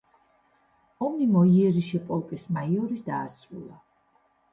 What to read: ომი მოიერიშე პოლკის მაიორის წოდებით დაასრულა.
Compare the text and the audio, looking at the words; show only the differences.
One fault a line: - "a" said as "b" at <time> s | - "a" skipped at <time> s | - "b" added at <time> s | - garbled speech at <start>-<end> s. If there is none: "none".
- "წოდებით" skipped at 3.1 s